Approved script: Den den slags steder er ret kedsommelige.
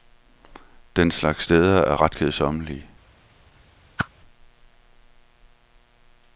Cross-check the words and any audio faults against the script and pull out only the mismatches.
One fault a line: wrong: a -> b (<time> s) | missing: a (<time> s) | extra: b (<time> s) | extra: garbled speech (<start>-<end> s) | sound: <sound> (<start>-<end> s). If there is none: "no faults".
missing: den (1.1 s)
sound: whoosh (4.0-4.1 s)